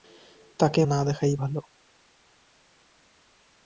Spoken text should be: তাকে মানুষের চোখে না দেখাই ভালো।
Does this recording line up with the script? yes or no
no